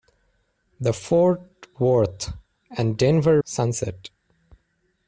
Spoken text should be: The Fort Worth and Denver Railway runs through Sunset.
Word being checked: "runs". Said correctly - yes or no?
no